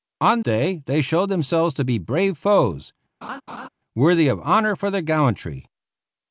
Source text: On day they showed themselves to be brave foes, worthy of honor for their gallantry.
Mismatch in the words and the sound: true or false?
true